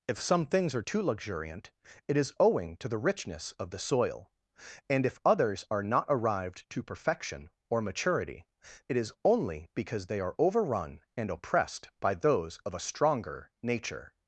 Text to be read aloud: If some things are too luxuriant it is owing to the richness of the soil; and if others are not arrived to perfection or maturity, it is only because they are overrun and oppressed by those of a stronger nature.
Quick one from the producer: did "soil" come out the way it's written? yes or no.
yes